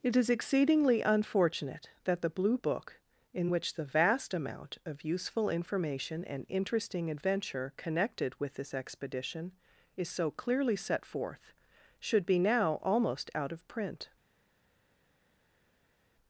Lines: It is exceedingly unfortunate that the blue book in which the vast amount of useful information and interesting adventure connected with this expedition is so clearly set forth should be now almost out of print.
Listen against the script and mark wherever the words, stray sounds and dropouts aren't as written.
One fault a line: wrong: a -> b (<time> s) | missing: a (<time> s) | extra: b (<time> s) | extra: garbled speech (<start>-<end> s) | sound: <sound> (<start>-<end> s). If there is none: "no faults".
no faults